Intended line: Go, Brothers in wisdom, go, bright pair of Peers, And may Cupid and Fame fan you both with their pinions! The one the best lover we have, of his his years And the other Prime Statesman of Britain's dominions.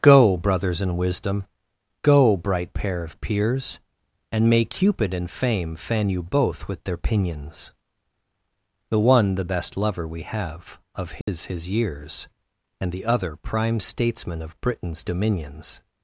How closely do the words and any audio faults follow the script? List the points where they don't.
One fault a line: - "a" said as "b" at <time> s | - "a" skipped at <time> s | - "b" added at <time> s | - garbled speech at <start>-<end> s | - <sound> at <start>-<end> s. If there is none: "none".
- dropout at 11.2-11.3 s